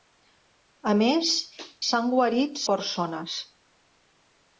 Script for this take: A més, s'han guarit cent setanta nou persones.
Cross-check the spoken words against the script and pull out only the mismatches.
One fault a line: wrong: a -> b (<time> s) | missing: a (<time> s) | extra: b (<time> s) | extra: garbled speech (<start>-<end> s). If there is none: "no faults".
missing: cent setanta nou (2.6 s)